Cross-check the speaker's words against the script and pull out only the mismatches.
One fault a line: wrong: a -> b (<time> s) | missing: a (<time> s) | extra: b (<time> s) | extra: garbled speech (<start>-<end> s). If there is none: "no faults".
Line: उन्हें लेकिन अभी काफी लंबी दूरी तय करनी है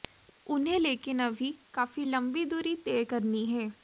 no faults